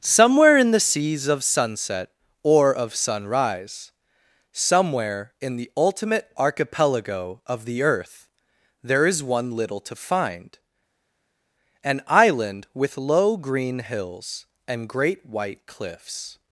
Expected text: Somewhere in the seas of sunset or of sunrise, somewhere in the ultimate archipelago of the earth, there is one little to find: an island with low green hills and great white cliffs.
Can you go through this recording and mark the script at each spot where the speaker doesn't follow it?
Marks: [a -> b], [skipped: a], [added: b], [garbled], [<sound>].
Somewhere in the seas of sunset or of sunrise, somewhere in the ultimate archipelago of the earth, there is one little to find: an island with low green hills and great white cliffs.